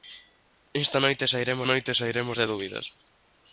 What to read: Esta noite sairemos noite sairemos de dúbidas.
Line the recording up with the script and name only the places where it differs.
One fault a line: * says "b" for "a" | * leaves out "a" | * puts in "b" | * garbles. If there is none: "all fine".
all fine